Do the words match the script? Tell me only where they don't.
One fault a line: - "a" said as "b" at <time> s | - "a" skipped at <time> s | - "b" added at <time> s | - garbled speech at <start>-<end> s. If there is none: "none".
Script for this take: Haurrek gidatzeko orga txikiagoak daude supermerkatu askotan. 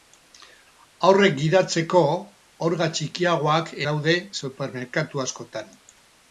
none